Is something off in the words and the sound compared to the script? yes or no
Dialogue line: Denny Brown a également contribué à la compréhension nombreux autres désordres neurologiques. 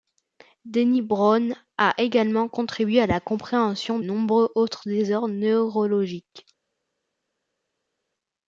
no